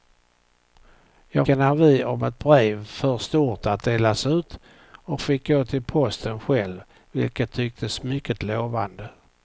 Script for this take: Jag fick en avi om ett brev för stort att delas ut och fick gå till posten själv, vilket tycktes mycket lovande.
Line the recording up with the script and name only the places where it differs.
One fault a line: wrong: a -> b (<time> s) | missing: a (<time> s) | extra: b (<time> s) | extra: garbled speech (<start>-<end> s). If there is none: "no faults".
missing: fick (1.5 s)